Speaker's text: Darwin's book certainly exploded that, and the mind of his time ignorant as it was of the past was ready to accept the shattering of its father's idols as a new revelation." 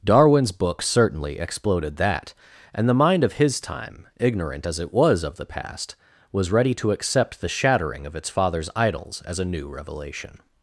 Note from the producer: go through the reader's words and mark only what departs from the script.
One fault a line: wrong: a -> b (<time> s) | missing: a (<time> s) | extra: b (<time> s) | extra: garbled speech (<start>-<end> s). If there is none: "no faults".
no faults